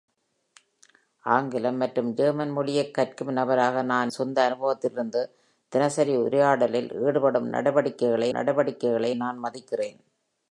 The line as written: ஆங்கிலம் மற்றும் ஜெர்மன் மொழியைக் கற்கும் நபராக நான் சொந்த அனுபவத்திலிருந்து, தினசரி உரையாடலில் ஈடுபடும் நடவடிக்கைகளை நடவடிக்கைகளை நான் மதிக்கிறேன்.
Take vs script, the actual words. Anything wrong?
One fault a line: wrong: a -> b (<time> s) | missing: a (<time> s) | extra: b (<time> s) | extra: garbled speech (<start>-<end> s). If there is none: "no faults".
no faults